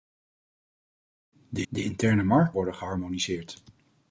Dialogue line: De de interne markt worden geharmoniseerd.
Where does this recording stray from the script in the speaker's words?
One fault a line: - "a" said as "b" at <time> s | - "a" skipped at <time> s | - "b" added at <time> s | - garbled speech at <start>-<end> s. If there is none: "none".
none